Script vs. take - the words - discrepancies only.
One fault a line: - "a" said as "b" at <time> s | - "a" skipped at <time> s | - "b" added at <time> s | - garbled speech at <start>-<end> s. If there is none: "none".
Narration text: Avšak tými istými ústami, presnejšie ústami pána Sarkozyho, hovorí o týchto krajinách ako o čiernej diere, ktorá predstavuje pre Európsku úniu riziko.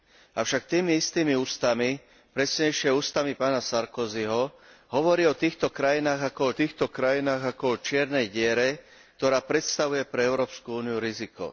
- "týchto krajinách ako" added at 6.5 s